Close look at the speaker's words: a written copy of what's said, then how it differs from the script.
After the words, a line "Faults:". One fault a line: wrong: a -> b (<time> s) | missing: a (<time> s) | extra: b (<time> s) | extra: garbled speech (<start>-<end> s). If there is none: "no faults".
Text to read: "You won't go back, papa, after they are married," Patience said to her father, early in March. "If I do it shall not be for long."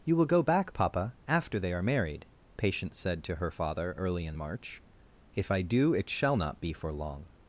"You will go back, papa, after they are married," Patience said to her father, early in March. "If I do it shall not be for long."
Faults:
wrong: won't -> will (0.1 s)